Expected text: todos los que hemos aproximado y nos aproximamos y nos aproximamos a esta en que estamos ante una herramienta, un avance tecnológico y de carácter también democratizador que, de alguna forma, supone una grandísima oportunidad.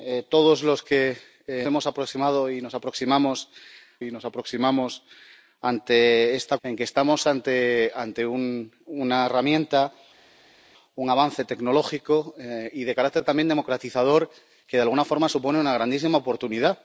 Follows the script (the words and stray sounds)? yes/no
yes